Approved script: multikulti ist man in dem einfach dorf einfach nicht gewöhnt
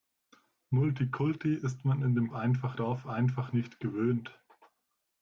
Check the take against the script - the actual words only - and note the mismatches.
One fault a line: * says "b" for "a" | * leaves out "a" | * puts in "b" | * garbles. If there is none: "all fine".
all fine